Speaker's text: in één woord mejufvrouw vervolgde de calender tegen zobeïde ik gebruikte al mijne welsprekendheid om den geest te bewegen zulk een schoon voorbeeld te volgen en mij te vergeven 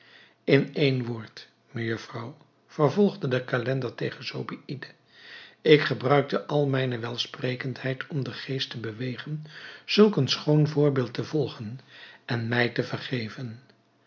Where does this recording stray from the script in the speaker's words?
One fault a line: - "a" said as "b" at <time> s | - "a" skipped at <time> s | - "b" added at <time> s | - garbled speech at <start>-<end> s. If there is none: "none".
none